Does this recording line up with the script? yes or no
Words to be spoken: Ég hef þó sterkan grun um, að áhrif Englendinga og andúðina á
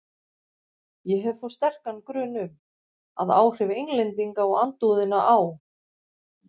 yes